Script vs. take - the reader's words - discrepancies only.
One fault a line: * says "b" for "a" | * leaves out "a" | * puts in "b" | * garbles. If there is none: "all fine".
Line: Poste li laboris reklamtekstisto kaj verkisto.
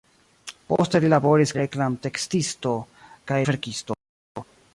all fine